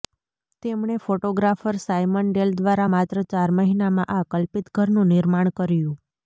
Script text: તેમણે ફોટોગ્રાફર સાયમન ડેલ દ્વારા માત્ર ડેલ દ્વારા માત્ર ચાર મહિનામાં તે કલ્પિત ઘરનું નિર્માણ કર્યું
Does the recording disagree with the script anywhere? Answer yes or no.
yes